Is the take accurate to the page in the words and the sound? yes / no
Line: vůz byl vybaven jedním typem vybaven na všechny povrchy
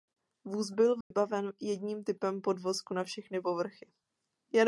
no